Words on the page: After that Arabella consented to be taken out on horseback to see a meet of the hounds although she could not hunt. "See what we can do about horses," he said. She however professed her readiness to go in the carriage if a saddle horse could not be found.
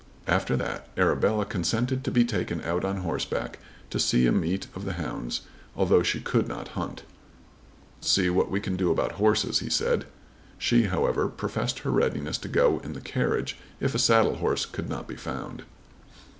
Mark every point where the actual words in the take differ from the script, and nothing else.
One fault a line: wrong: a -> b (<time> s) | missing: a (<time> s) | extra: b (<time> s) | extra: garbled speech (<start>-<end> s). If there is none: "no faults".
no faults